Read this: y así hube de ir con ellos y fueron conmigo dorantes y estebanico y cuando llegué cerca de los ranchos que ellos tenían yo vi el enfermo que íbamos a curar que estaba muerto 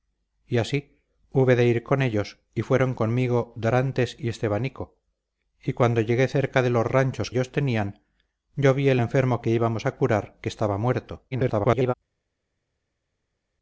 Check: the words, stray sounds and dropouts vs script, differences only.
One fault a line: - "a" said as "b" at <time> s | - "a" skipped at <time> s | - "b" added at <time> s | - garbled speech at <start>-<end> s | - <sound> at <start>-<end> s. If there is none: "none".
- "que" skipped at 7.3 s
- garbled speech at 11.3-11.9 s